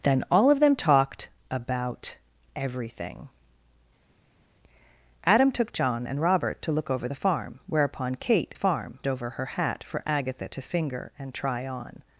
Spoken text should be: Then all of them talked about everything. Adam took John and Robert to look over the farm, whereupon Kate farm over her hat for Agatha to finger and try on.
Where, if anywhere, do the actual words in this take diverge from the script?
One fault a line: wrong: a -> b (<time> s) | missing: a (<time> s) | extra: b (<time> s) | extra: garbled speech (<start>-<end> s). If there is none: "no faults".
no faults